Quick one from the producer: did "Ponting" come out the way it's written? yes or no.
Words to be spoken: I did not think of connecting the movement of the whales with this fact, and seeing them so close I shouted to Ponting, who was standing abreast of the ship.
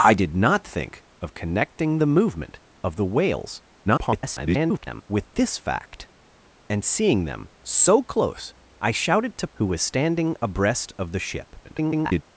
no